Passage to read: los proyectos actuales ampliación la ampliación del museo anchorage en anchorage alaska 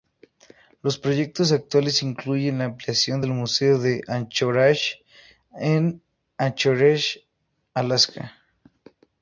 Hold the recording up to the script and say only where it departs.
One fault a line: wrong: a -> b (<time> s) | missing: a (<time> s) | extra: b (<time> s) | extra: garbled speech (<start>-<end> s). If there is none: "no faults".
wrong: ampliación -> incluyen (2.0 s)
extra: de (3.8 s)